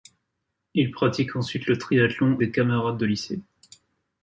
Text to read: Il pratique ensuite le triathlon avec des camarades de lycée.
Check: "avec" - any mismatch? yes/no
yes